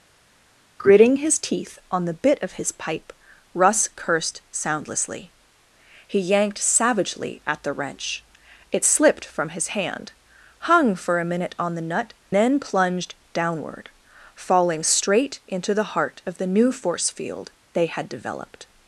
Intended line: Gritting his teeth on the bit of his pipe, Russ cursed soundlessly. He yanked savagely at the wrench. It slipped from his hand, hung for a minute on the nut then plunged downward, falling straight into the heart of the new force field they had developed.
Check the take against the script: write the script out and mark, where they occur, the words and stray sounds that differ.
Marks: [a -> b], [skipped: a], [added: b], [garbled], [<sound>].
Gritting his teeth on the bit of his pipe, Russ cursed soundlessly. He yanked savagely at the wrench. It slipped from his hand, hung for a minute on the nut then plunged downward, falling straight into the heart of the new force field they had developed.